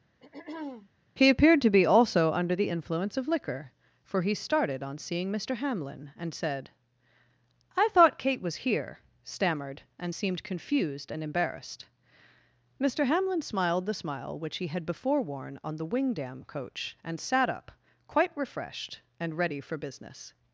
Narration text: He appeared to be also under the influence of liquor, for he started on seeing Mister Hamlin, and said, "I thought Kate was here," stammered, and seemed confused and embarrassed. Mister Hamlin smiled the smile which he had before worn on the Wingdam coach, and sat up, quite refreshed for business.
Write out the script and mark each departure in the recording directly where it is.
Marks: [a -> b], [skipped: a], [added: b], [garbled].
He appeared to be also under the influence of liquor, for he started on seeing Mister Hamlin, and said, "I thought Kate was here," stammered, and seemed confused and embarrassed. Mister Hamlin smiled the smile which he had before worn on the Wingdam coach, and sat up, quite refreshed [added: and ready] for business.